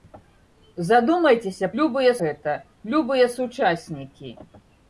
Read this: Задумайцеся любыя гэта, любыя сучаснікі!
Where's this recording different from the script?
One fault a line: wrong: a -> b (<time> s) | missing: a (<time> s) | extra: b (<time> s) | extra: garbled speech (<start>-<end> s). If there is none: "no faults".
no faults